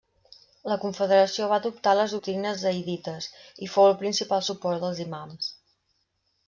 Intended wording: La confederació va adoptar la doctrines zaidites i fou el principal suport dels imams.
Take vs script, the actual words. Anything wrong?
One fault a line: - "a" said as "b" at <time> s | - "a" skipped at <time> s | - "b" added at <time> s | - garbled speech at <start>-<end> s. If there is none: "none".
- "la" said as "les" at 2.0 s